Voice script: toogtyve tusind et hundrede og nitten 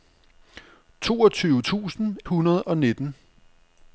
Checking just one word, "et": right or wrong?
wrong